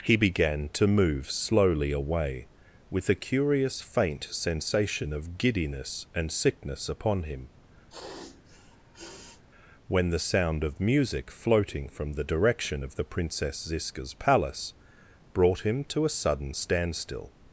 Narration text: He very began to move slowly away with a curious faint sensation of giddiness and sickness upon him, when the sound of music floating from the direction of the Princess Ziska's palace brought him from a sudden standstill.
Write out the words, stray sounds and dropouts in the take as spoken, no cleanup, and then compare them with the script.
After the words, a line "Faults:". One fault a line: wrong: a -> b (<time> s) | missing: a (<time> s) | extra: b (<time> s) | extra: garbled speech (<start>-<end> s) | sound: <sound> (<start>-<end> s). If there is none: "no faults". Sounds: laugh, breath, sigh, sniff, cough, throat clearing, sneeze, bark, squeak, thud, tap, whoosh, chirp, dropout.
He began to move slowly away with a curious faint sensation of giddiness and sickness upon him, when the sound of music floating from the direction of the Princess Ziska's palace brought him to a sudden standstill.
Faults:
missing: very (0.1 s)
sound: sniff (7.9-9.4 s)
wrong: from -> to (15.9 s)